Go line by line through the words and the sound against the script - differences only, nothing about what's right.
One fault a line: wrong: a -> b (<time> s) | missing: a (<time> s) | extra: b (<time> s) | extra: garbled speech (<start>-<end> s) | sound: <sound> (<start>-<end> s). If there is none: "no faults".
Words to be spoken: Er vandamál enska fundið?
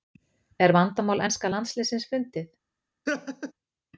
extra: landsliðsins (1.5 s)
sound: laugh (3.1-3.5 s)